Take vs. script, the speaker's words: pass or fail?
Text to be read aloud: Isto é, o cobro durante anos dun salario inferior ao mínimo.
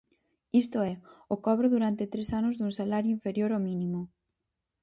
fail